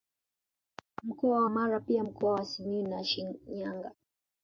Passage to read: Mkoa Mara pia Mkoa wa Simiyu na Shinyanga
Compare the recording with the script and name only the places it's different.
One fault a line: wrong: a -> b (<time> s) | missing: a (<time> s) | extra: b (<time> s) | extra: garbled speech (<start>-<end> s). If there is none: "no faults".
no faults